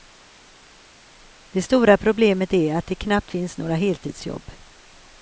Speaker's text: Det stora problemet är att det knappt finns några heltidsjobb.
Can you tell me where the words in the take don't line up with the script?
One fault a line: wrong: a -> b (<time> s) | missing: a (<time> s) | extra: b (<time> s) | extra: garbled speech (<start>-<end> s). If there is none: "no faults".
no faults